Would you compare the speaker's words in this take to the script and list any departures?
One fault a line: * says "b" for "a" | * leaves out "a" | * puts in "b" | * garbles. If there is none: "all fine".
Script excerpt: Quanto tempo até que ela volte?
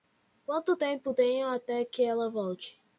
* puts in "tenho"